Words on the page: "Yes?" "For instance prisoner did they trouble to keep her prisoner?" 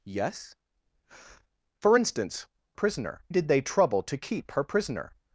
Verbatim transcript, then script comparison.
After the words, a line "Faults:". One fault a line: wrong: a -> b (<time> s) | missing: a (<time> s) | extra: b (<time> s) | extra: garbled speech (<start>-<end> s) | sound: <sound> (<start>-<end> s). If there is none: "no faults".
"Yes?" "For instance prisoner did they trouble to keep her prisoner?"
Faults:
no faults